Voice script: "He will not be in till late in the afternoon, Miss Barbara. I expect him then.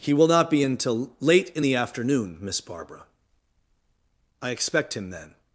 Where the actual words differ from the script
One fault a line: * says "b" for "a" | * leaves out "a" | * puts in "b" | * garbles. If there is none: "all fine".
all fine